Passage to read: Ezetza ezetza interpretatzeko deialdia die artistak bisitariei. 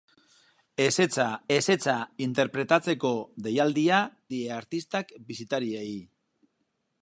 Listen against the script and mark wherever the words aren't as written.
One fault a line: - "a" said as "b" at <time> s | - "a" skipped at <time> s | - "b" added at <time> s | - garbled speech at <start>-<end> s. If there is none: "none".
none